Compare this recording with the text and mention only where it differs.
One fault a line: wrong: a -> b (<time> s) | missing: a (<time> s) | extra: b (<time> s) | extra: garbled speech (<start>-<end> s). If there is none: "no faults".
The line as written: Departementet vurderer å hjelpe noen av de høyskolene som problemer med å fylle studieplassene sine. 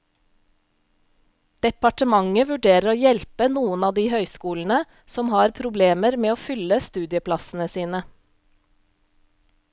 extra: har (5.4 s)